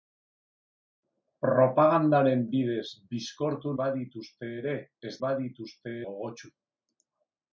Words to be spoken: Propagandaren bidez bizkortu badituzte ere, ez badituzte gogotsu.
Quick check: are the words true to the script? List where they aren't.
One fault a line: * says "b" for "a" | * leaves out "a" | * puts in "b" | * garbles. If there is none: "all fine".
all fine